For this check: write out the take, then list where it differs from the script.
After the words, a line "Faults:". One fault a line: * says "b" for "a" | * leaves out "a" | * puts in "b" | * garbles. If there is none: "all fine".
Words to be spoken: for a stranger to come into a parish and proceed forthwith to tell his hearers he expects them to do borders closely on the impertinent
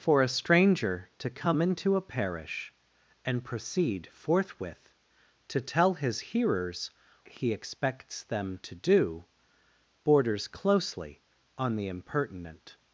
for a stranger to come into a parish and proceed forthwith to tell his hearers he expects them to do borders closely on the impertinent
Faults:
all fine